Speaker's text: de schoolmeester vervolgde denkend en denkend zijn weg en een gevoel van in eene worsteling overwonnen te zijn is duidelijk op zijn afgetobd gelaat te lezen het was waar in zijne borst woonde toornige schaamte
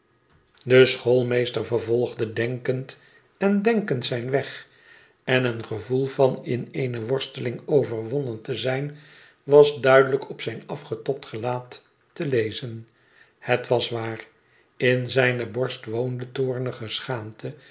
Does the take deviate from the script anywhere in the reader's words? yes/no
yes